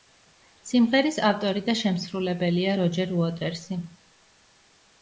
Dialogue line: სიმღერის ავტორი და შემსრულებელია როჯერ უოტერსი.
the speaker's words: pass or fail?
pass